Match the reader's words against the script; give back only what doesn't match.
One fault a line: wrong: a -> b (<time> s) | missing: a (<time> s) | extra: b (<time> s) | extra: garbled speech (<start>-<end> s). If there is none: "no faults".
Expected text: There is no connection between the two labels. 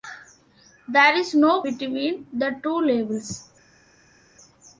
missing: connection (1.6 s)